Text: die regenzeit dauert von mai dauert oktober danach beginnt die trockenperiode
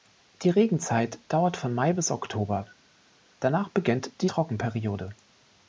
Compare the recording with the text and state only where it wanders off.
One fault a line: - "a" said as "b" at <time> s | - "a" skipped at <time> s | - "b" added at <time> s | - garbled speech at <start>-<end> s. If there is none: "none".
- "dauert" said as "bis" at 1.9 s